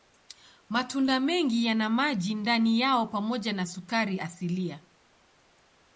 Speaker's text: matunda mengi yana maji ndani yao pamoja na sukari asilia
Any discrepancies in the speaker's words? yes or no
no